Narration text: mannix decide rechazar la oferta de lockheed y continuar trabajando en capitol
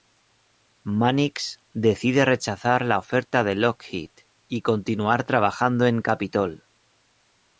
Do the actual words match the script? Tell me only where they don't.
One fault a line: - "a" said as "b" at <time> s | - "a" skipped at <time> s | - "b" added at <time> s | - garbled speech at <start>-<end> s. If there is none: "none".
none